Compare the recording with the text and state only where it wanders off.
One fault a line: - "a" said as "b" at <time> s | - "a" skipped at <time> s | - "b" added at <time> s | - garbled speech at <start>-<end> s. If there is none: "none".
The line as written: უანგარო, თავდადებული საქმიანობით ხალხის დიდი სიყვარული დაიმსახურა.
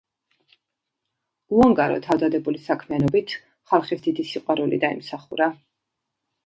none